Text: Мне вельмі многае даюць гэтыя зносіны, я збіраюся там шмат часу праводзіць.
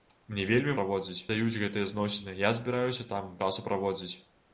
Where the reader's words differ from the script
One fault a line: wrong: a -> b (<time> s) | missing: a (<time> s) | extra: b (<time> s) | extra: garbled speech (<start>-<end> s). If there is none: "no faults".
wrong: многае -> праводзіць (0.8 s)
missing: шмат (3.3 s)